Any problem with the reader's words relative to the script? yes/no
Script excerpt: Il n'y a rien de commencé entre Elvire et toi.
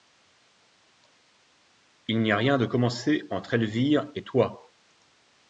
no